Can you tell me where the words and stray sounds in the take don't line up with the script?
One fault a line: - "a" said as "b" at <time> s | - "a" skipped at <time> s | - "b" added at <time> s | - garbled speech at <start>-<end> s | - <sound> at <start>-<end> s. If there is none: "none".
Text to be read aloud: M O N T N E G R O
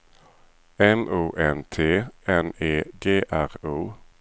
none